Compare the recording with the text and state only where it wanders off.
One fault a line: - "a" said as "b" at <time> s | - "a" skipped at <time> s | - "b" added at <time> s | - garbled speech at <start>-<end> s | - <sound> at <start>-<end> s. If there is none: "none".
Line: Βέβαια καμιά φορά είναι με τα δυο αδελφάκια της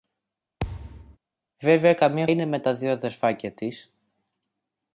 - thud at 0.6-1.2 s
- "φορά" skipped at 2.3 s